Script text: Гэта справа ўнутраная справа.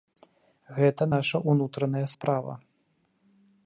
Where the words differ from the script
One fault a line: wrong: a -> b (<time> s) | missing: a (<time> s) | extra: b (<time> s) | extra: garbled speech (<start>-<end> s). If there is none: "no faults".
wrong: справа -> наша (1.1 s)